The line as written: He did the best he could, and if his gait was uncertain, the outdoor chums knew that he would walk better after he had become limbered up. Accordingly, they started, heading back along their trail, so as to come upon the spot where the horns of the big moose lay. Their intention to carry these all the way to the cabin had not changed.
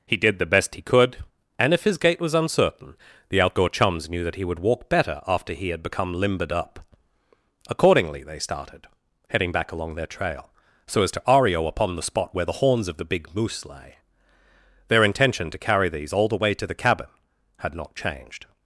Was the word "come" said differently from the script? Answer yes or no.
yes